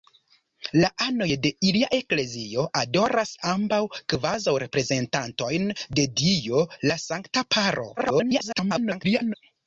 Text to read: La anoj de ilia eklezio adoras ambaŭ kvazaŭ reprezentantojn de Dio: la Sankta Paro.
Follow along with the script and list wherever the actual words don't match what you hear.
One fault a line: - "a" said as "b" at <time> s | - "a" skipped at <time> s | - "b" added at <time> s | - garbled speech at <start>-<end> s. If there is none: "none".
- garbled speech at 8.0-9.3 s